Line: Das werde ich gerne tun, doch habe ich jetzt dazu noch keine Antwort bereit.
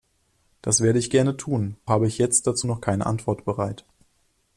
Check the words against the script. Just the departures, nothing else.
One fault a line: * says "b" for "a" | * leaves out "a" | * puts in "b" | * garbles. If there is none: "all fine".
* leaves out "doch"